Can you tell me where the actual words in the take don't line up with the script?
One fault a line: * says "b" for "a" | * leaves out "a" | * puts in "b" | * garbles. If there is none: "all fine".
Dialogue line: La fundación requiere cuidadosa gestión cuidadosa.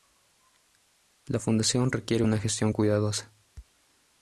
* says "una" for "cuidadosa"